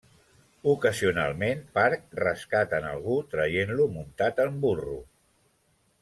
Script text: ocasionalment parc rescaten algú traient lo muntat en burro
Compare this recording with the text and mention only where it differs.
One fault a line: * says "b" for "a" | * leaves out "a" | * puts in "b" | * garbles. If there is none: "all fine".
all fine